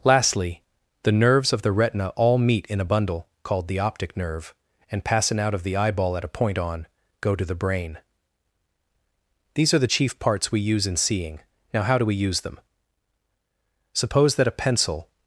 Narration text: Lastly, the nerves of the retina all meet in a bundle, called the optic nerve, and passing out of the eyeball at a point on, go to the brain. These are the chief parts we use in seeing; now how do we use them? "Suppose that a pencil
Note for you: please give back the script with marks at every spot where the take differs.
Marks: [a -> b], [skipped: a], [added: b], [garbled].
Lastly, the nerves of the retina all meet in a bundle, called the optic nerve, and passing out of the eyeball at a point on, go to the brain. These are the chief parts we use in seeing; now how do we use them? "Suppose that a pencil